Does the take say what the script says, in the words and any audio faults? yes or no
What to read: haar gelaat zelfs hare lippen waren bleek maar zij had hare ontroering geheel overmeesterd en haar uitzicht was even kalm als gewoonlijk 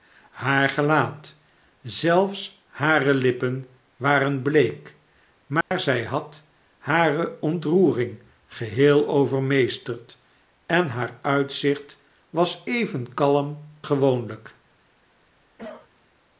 no